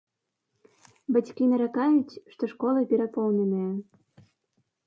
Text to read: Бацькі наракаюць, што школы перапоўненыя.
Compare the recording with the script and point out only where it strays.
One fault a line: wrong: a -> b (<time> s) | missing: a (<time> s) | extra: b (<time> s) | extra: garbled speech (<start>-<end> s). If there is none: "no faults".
no faults